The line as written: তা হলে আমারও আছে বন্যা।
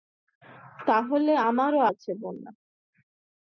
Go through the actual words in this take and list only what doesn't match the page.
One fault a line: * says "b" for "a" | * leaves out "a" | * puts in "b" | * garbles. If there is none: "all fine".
all fine